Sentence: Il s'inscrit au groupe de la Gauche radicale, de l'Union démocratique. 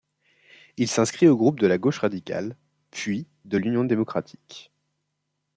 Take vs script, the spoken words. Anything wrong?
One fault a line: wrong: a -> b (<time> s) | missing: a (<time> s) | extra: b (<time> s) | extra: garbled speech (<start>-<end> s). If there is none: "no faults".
extra: puis (2.9 s)